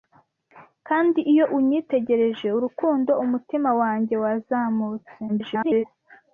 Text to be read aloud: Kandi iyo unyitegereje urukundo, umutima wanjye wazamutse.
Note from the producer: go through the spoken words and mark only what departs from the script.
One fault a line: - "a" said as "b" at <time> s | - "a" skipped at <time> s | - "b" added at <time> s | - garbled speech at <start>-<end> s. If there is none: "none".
- garbled speech at 5.3-5.8 s